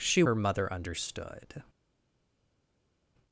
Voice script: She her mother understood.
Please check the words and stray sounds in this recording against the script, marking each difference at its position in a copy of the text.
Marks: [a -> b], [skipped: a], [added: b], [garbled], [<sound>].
She her mother understood.